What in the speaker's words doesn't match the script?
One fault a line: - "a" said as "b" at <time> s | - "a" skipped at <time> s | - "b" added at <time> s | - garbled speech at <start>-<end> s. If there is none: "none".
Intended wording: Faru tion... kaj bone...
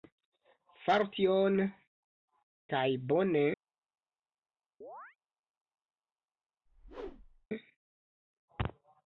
none